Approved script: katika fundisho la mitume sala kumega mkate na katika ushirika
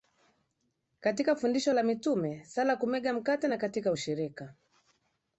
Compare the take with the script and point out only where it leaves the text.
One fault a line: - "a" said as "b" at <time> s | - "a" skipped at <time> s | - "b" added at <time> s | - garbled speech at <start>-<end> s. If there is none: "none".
none